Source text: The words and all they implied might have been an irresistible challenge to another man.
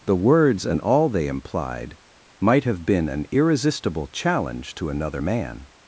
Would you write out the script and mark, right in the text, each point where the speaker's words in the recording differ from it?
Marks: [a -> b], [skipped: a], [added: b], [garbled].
The words and all they implied might have been an irresistible challenge to another man.